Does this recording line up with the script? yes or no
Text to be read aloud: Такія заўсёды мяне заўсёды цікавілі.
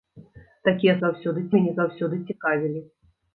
yes